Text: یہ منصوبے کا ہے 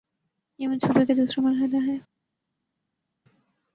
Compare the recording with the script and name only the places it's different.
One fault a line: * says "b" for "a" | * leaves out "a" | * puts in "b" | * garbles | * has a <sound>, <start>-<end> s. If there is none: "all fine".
* puts in "دوسرا مرحلہ"